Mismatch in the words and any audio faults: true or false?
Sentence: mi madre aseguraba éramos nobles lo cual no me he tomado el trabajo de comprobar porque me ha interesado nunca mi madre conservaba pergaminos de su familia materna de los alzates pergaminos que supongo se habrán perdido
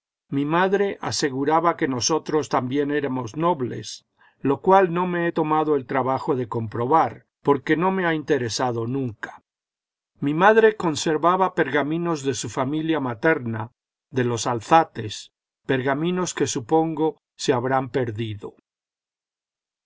true